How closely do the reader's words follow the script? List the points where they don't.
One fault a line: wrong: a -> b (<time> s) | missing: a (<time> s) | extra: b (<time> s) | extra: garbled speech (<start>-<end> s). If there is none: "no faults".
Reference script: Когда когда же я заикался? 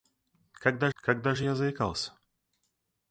no faults